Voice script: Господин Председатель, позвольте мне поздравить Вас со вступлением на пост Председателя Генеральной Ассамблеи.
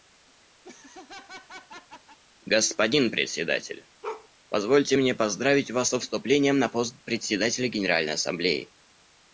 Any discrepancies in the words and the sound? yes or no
yes